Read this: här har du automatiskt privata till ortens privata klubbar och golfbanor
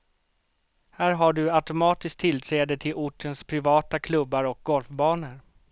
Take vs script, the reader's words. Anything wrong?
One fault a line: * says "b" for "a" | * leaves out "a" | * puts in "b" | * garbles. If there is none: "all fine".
* says "tillträde" for "privata"